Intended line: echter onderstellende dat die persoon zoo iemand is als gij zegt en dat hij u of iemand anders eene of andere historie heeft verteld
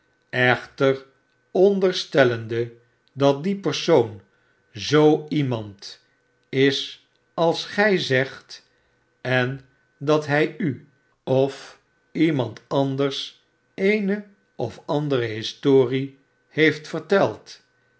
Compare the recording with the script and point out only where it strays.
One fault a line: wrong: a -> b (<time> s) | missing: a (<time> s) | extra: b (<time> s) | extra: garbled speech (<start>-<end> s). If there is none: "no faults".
no faults